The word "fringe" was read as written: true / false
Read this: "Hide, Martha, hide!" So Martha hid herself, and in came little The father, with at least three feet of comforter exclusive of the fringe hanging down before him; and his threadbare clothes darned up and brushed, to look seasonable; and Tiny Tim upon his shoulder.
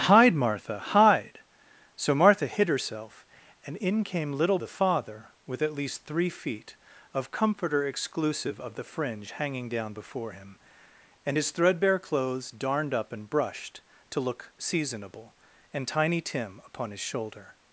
true